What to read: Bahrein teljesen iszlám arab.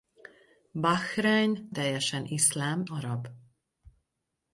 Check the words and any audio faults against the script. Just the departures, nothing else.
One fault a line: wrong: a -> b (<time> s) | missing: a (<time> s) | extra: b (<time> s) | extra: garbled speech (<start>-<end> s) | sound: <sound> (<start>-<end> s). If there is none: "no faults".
no faults